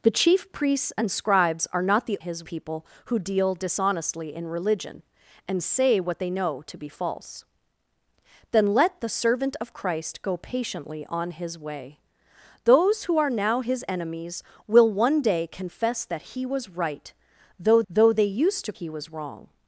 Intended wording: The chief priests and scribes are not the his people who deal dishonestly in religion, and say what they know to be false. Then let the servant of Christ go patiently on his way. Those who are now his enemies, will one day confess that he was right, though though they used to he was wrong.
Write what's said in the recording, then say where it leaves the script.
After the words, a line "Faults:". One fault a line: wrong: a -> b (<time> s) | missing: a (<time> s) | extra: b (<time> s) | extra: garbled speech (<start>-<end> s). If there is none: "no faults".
The chief priests and scribes are not the his people who deal dishonestly in religion, and say what they know to be false. Then let the servant of Christ go patiently on his way. Those who are now his enemies, will one day confess that he was right, though though they used to he was wrong.
Faults:
no faults